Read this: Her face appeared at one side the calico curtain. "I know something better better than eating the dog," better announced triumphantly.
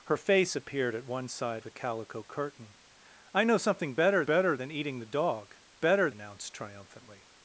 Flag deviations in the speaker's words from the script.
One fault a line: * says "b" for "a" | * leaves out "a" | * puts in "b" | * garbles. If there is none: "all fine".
all fine